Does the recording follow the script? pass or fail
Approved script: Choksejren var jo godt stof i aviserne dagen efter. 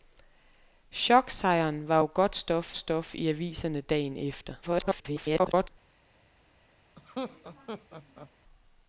fail